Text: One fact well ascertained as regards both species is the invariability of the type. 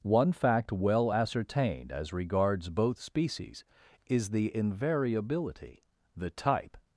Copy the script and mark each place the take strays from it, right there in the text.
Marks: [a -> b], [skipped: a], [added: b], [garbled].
One fact well ascertained as regards both species is the invariability [skipped: of] the type.